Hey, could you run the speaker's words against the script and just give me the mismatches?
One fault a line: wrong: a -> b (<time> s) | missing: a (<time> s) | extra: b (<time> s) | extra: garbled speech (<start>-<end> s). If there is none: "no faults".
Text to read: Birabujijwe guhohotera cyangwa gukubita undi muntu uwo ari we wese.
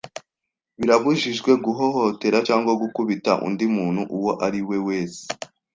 no faults